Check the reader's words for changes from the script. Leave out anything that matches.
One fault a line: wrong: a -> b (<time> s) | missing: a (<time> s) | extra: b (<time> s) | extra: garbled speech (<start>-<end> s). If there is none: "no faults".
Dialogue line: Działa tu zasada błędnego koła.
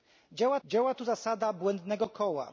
extra: działa (0.6 s)